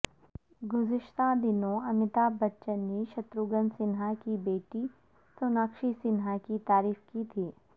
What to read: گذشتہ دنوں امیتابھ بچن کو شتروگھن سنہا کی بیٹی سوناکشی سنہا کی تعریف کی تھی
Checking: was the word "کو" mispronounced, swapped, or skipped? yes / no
yes